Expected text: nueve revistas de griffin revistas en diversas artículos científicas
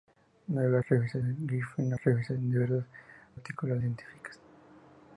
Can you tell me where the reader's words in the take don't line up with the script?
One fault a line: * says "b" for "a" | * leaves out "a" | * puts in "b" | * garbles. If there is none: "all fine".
all fine